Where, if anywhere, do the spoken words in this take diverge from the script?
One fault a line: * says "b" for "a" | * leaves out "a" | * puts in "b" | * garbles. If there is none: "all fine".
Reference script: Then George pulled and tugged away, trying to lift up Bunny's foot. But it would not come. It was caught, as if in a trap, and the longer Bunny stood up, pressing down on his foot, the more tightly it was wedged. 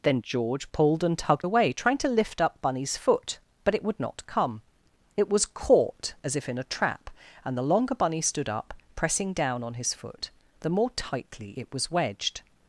all fine